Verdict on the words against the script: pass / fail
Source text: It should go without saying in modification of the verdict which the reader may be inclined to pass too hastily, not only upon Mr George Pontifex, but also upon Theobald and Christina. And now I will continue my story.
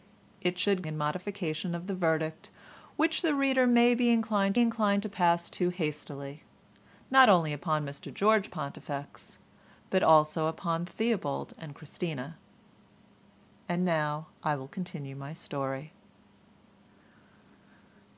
fail